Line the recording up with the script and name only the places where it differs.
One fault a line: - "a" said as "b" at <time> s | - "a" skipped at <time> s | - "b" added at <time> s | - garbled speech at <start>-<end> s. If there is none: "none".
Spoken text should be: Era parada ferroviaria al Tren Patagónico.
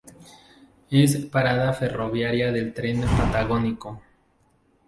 - "Era" said as "Es" at 0.9 s
- "al" said as "del" at 2.5 s